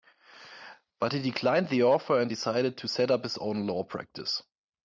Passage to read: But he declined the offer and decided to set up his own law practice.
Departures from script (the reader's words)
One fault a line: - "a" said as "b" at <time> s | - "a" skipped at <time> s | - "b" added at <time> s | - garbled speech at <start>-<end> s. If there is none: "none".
none